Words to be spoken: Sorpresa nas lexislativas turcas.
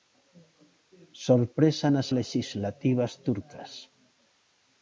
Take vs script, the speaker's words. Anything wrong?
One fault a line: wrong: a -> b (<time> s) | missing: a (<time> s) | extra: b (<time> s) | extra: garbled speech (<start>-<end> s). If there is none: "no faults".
no faults